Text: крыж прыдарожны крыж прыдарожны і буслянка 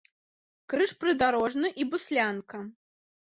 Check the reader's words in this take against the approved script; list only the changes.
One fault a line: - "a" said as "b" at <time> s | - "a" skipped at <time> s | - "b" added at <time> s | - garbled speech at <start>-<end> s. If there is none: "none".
- "крыж прыдарожны" skipped at 1.7 s